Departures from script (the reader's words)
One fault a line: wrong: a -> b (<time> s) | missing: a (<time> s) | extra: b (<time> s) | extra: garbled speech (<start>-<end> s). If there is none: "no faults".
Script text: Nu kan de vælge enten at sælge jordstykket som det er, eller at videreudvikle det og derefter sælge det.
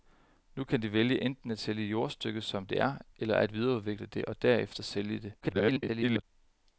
extra: garbled speech (5.4-6.2 s)